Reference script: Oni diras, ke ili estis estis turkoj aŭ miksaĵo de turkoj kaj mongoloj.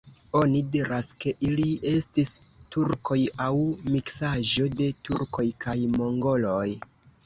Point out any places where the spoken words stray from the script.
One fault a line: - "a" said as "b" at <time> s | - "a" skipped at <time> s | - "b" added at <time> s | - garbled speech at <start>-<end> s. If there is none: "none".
- "estis" skipped at 2.3 s